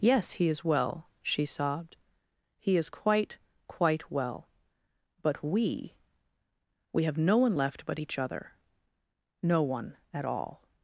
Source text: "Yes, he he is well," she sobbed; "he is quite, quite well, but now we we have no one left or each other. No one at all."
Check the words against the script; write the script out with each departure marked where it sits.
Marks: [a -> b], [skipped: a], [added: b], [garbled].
"Yes, he [skipped: he] is well," she sobbed; "he is quite, quite well, but [skipped: now] we we have no one left [or -> but] each other. No one at all."